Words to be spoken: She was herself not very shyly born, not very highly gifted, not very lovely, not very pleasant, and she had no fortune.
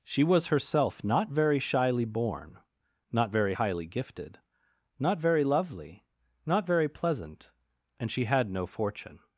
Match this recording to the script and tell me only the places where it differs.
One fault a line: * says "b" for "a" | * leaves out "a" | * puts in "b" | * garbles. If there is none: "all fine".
all fine